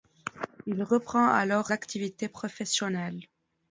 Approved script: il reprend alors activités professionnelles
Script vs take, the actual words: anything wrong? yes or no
no